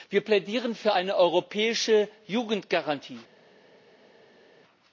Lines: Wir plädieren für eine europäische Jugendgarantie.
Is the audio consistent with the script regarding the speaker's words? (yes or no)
yes